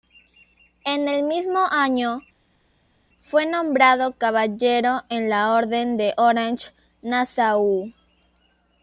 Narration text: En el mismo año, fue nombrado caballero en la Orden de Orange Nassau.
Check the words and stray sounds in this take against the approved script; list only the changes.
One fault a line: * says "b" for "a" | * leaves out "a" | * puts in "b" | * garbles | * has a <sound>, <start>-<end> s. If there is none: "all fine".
all fine